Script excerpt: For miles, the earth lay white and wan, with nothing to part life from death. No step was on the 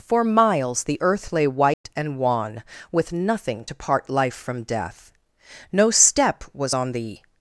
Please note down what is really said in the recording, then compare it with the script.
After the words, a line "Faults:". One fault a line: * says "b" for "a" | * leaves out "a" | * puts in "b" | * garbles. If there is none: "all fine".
For miles, the earth lay white and wan, with nothing to part life from death. No step was on the
Faults:
all fine